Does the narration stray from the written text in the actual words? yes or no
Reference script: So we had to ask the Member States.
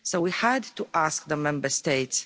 no